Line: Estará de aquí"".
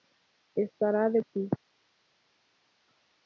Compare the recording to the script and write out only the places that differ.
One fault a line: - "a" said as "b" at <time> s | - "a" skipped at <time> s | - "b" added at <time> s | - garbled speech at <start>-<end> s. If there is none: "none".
none